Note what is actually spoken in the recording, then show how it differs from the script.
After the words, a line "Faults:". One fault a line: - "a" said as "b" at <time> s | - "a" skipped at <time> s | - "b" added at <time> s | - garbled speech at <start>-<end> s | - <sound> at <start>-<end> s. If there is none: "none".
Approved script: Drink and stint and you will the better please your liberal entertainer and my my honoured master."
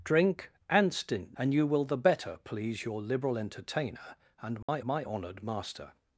Drink and stint and you will the better please your liberal entertainer and my my honoured master."
Faults:
- dropout at 4.6-4.7 s